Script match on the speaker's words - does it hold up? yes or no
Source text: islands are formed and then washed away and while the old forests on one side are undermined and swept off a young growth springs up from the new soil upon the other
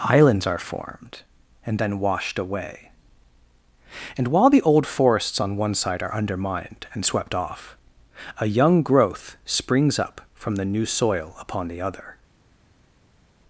yes